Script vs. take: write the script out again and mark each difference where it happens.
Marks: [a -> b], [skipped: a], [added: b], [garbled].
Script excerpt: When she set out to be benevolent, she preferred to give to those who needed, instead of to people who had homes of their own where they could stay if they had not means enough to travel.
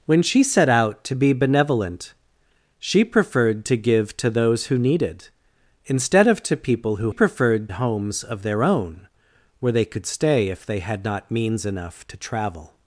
When she set out to be benevolent, she preferred to give to those who needed, instead of to people who [had -> preferred] homes of their own where they could stay if they had not means enough to travel.